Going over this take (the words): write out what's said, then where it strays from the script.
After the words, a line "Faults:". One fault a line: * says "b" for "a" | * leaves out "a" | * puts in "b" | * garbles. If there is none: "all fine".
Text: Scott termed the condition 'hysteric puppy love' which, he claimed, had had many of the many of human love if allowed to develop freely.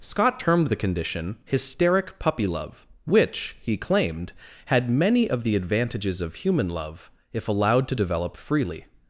Scott termed the condition 'hysteric puppy love' which, he claimed, had many of the advantages of human love if allowed to develop freely.
Faults:
* leaves out "had"
* says "advantages" for "many"